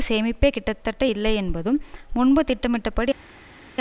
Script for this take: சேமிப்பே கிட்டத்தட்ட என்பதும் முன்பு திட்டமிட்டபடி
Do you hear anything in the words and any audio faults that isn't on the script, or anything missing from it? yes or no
yes